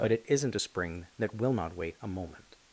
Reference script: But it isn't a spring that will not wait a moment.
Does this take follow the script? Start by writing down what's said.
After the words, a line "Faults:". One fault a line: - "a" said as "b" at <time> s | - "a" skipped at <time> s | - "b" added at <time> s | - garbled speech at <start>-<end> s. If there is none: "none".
But it isn't a spring that will not wait a moment.
Faults:
none